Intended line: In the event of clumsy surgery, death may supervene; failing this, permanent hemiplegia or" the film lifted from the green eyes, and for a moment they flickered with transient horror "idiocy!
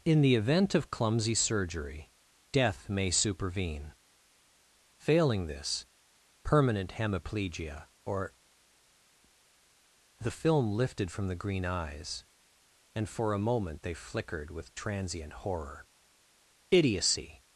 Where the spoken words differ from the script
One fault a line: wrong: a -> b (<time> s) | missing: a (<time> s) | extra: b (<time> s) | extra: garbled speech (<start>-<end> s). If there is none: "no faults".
no faults